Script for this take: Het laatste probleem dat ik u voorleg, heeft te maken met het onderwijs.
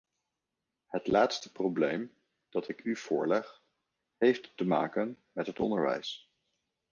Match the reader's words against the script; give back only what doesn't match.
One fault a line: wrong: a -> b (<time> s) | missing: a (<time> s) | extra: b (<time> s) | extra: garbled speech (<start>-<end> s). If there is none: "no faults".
no faults